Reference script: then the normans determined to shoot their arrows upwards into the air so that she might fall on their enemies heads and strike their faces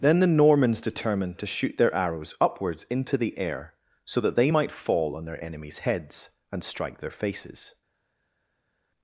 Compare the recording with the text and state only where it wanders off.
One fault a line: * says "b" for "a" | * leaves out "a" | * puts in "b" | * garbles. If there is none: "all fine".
* says "they" for "she"